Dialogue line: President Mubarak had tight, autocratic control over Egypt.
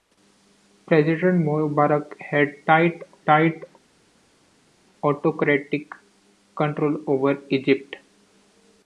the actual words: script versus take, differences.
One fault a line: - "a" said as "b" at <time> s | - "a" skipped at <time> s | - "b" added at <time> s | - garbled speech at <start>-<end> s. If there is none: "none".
- "tight" added at 3.2 s